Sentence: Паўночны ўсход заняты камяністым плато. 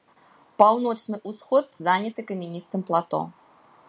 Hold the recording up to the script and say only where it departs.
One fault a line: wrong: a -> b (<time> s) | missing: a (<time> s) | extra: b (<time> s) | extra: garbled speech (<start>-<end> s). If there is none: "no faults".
no faults